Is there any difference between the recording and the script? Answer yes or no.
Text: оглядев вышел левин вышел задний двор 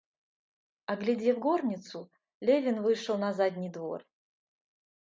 yes